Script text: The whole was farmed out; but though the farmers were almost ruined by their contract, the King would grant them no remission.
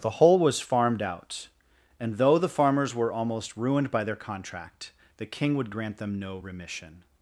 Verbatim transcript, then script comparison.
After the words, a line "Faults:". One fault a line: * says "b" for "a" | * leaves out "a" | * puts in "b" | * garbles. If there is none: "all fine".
The whole was farmed out; and though the farmers were almost ruined by their contract, the King would grant them no remission.
Faults:
* says "and" for "but"